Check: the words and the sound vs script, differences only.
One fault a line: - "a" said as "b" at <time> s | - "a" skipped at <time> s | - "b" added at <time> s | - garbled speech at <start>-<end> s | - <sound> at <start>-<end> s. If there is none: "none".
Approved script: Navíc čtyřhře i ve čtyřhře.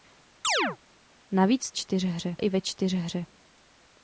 - chirp at 0.4-0.8 s